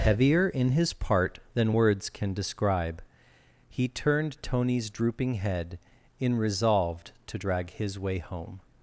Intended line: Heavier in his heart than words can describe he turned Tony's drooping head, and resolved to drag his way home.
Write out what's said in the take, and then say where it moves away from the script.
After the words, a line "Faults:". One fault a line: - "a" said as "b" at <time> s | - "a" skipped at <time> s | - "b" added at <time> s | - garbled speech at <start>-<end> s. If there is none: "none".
Heavier in his part than words can describe he turned Tony's drooping head, in resolved to drag his way home.
Faults:
- "heart" said as "part" at 0.9 s
- "and" said as "in" at 6.2 s